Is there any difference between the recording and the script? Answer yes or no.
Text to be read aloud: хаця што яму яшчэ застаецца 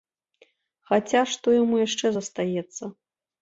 no